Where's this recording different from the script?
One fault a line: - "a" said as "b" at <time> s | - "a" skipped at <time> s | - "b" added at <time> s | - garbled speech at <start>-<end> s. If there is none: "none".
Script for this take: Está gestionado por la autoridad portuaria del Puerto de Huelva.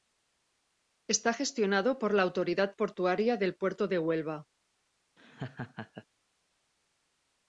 none